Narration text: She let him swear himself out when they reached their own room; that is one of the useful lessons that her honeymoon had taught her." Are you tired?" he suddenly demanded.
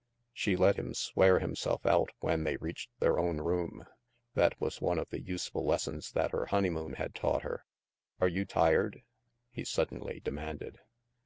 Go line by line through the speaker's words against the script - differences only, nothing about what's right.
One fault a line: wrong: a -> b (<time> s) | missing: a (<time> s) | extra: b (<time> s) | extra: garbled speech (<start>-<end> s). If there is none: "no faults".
wrong: is -> was (4.6 s)